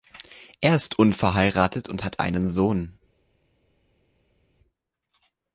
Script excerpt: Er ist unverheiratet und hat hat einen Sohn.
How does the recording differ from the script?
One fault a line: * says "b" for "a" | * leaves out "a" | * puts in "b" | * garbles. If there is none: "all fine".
* leaves out "hat"